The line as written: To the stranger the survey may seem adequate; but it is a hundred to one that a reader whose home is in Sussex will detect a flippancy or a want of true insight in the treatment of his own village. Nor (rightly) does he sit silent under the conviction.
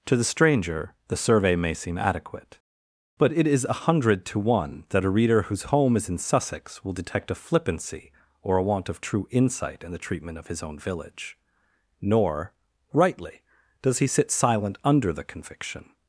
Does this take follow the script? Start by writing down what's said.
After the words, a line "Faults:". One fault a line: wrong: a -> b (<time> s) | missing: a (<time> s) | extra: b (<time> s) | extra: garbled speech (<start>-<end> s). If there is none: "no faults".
To the stranger the survey may seem adequate; but it is a hundred to one that a reader whose home is in Sussex will detect a flippancy or a want of true insight in the treatment of his own village. Nor (rightly) does he sit silent under the conviction.
Faults:
no faults